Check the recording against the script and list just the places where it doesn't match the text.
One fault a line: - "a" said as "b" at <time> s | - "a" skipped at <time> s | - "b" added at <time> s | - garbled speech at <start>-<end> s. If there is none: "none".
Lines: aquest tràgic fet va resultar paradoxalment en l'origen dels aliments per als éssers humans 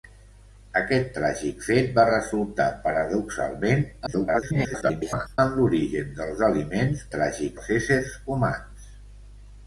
- garbled speech at 4.1-5.4 s
- "per" said as "tràgic" at 7.1 s